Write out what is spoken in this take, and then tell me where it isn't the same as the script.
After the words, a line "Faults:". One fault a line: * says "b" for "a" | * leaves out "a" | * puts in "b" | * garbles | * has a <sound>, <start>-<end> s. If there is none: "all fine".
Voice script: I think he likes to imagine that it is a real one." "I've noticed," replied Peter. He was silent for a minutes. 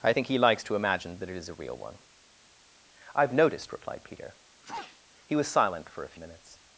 I think he likes to imagine that it is a real one." "I've noticed," replied Peter. He was silent for a minutes.
Faults:
* has a sneeze, 4.6-5.0 s